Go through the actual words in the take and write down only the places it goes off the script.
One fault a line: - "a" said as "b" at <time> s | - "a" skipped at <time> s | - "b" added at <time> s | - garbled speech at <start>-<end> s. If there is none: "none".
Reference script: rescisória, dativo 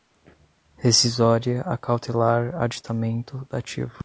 - "acautelar aditamento" added at 1.6 s